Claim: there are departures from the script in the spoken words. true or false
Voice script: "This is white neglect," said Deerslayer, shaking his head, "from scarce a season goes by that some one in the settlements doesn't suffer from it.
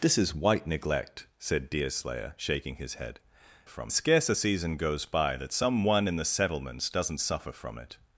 false